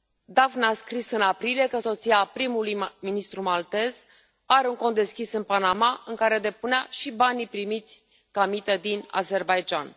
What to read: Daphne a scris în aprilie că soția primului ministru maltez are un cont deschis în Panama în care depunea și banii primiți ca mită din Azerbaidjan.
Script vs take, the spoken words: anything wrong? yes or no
no